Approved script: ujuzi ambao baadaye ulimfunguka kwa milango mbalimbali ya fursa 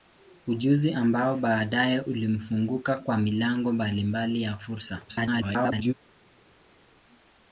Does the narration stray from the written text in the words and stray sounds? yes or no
yes